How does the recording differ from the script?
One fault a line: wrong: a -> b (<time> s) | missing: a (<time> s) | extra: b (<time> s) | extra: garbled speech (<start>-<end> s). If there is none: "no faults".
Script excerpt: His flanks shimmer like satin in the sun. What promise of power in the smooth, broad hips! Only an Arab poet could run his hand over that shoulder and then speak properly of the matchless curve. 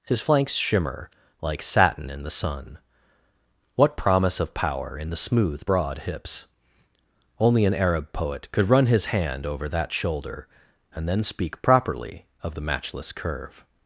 no faults